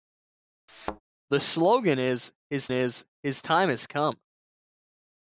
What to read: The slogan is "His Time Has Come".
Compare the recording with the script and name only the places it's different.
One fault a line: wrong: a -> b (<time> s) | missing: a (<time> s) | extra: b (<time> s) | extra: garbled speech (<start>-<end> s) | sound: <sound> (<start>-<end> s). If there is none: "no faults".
sound: thud (0.7-1.0 s)
extra: is His (2.7 s)